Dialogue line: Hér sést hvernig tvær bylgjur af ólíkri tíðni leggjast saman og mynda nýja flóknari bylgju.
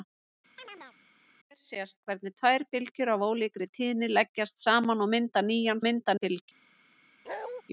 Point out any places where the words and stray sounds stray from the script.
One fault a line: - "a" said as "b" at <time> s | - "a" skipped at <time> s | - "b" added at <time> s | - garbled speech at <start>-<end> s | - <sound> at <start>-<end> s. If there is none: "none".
- chirp at 0.6-1.0 s
- "flóknari" said as "mynda" at 5.8 s
- bark at 7.3-7.6 s